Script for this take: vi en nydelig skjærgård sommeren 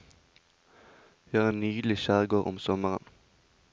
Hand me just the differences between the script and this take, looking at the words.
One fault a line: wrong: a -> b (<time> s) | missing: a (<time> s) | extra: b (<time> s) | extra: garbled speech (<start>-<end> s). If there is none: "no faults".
extra: har (1.4 s)
extra: om (2.5 s)